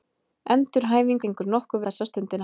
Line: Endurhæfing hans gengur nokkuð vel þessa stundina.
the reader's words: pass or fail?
fail